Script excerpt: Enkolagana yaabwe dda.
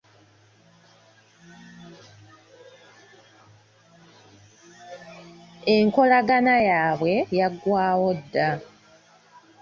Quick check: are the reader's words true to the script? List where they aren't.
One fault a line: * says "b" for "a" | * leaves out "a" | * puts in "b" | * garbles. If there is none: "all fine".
* puts in "yaggwawo"